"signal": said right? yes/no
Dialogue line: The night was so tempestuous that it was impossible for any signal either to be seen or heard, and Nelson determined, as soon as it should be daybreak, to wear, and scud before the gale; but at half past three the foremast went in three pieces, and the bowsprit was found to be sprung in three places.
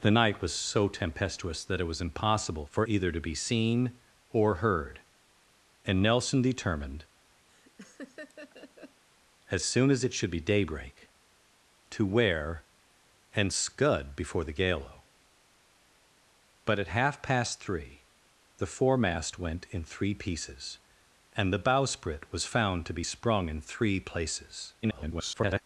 no